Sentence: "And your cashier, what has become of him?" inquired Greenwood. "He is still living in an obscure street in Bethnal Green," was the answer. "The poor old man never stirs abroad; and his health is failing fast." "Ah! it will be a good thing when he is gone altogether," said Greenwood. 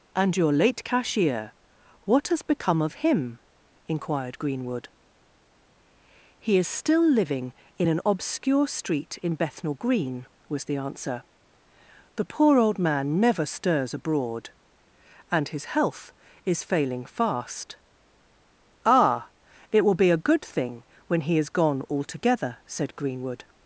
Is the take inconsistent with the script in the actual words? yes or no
yes